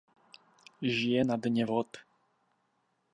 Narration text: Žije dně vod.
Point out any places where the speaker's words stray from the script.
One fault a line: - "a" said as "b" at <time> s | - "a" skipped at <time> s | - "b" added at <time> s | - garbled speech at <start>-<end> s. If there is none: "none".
- "na" added at 1.2 s